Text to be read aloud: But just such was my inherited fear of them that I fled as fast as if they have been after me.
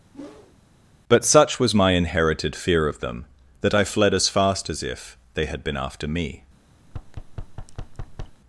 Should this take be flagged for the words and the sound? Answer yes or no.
yes